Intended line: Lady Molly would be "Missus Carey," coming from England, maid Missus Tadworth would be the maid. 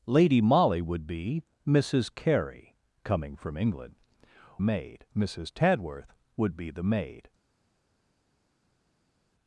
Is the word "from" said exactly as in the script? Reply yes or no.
yes